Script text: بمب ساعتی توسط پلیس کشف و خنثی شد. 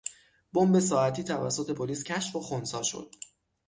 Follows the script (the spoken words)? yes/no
yes